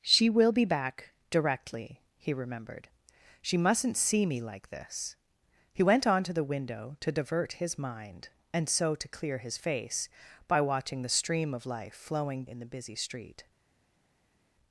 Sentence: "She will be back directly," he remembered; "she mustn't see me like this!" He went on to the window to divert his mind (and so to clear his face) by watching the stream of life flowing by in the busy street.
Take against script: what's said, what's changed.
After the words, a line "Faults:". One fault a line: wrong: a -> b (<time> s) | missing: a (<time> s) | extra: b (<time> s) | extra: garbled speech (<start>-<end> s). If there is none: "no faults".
"She will be back directly," he remembered; "she mustn't see me like this!" He went on to the window to divert his mind (and so to clear his face) by watching the stream of life flowing in the busy street.
Faults:
missing: by (12.4 s)